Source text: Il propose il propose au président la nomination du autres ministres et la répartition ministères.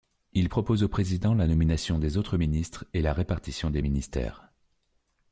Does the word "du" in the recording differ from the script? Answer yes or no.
yes